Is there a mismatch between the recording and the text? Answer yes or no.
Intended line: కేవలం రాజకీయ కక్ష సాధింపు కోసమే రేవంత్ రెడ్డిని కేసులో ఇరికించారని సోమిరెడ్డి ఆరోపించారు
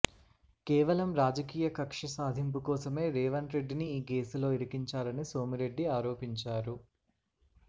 yes